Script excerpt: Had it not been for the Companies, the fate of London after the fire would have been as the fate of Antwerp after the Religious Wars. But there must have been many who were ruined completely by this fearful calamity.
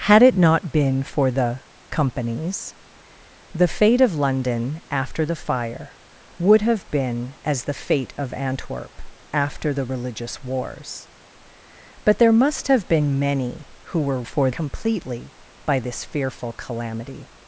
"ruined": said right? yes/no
no